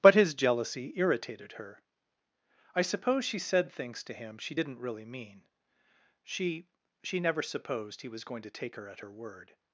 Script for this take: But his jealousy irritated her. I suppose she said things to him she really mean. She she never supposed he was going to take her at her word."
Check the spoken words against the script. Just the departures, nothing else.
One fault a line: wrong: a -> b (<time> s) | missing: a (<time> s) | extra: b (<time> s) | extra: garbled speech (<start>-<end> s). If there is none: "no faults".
extra: didn't (4.5 s)